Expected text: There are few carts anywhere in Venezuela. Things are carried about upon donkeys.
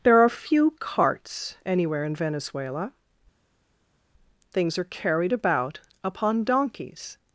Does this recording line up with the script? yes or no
yes